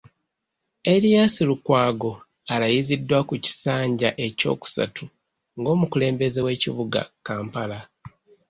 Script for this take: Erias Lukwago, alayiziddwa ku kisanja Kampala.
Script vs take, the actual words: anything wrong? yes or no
yes